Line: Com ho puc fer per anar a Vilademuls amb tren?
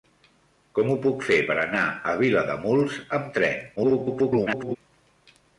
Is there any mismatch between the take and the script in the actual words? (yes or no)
yes